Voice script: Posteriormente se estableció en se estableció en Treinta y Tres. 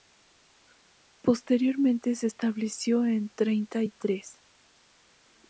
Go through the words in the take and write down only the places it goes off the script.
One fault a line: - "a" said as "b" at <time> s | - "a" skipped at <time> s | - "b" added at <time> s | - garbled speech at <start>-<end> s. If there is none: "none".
- "se estableció en" skipped at 3.3 s